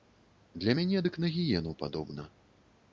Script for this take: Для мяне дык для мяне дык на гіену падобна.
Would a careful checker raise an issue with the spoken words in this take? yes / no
yes